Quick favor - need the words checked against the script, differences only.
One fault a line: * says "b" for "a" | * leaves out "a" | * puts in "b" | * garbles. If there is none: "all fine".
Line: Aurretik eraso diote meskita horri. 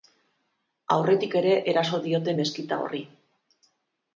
* puts in "ere"